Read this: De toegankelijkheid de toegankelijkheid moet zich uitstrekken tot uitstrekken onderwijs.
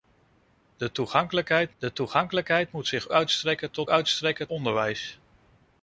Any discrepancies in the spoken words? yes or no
no